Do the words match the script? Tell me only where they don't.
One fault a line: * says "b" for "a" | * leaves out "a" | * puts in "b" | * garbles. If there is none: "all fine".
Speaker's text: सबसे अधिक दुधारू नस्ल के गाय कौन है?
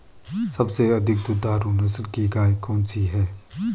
* says "की" for "के"
* puts in "सी"